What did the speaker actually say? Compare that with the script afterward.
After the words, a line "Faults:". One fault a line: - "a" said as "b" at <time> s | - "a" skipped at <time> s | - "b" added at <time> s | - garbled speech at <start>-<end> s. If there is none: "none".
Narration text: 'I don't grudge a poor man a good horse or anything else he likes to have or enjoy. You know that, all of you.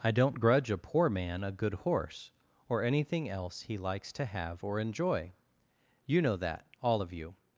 'I don't grudge a poor man a good horse or anything else he likes to have or enjoy. You know that, all of you.
Faults:
none